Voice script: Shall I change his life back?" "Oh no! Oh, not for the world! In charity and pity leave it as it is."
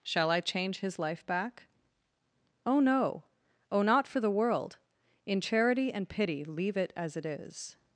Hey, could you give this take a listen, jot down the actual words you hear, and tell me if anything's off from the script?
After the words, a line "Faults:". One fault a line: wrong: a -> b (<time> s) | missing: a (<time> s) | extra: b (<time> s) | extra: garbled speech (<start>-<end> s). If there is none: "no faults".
Shall I change his life back?" "Oh no! Oh, not for the world! In charity and pity leave it as it is."
Faults:
no faults